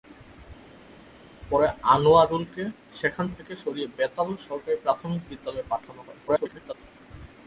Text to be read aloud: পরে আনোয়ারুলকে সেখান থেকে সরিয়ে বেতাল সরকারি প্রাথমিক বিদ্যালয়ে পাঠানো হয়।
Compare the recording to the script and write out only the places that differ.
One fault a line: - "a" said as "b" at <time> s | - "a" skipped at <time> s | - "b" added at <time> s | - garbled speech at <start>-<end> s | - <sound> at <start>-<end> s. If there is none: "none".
- garbled speech at 6.3-6.7 s